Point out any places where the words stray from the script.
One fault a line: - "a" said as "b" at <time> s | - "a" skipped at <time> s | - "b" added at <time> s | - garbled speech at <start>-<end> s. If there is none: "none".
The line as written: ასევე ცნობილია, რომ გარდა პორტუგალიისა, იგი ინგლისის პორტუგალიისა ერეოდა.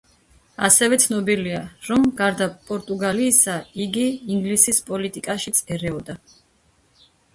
- "პორტუგალიისა" said as "პოლიტიკაშიც" at 4.9 s